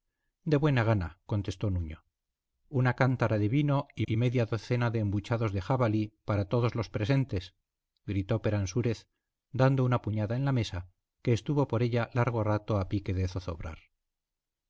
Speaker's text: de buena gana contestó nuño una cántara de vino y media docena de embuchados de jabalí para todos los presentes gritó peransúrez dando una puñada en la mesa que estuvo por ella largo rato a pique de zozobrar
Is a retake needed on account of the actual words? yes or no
yes